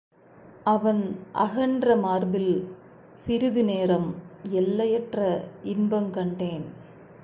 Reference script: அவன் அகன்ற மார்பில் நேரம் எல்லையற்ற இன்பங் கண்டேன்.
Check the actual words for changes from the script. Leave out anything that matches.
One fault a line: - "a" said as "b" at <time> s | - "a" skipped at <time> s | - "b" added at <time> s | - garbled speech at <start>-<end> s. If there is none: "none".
- "சிறிது" added at 3.2 s